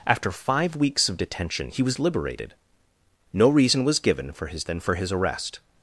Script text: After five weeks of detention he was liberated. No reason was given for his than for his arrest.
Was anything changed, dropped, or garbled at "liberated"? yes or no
no